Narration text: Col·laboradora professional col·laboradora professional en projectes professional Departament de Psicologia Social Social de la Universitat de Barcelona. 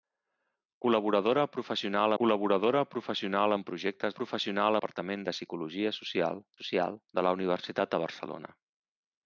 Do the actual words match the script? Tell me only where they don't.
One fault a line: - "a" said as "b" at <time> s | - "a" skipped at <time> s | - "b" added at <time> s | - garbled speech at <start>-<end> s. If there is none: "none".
none